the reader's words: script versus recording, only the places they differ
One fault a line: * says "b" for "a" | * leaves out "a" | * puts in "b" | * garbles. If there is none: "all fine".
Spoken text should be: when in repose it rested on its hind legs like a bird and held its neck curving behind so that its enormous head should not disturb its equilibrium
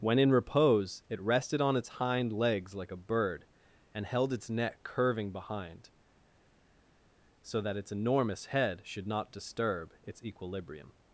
all fine